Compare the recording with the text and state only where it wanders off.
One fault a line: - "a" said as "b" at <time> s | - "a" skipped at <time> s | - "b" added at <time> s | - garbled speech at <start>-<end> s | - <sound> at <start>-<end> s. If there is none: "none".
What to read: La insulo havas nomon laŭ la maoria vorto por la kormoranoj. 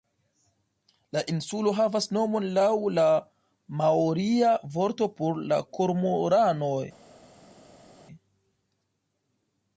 none